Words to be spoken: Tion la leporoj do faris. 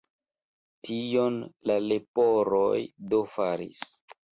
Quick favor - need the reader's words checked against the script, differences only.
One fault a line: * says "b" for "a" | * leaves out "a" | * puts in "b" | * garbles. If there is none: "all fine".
all fine